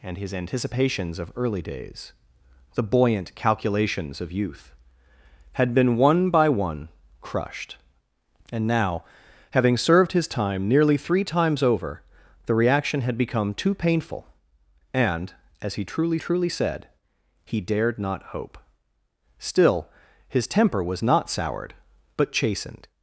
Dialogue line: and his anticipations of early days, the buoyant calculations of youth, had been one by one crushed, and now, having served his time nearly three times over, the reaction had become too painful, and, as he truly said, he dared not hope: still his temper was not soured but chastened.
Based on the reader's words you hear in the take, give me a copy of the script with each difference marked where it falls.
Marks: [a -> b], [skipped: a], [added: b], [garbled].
and his anticipations of early days, the buoyant calculations of youth, had been one by one crushed, and now, having served his time nearly three times over, the reaction had become too painful, and, as he truly [added: truly] said, he dared not hope: still his temper was not soured but chastened.